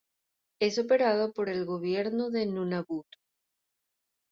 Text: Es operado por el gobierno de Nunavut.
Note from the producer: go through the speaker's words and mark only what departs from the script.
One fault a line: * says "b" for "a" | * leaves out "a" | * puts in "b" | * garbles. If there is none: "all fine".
all fine